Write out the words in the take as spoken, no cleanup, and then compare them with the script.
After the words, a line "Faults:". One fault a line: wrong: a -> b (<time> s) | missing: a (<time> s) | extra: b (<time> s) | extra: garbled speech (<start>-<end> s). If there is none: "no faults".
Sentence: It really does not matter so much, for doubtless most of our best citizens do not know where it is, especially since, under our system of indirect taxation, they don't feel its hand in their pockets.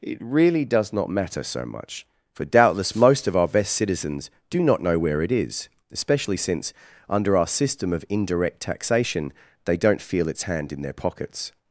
It really does not matter so much, for doubtless most of our best citizens do not know where it is, especially since, under our system of indirect taxation, they don't feel its hand in their pockets.
Faults:
no faults